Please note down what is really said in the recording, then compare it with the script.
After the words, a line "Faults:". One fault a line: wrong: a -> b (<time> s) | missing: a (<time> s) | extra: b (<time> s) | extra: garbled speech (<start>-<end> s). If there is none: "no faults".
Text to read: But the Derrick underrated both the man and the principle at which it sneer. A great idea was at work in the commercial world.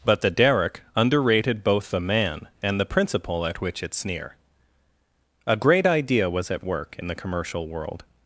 But the Derrick underrated both the man and the principle at which it sneer. A great idea was at work in the commercial world.
Faults:
no faults